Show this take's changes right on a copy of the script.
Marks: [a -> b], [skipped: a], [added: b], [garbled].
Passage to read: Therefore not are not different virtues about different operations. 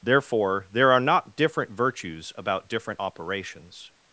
Therefore [not -> there] are not different virtues about different operations.